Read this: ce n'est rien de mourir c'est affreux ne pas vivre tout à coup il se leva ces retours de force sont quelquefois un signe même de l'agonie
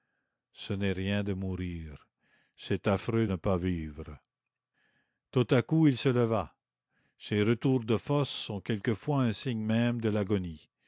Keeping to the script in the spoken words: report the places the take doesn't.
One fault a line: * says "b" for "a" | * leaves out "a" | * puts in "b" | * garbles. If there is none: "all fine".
all fine